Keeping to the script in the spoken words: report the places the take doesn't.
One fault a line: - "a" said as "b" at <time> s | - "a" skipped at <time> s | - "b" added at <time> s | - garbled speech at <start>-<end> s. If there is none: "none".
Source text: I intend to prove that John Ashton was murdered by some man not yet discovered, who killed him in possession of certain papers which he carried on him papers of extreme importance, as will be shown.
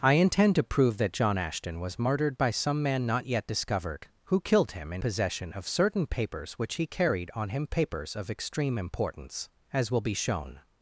none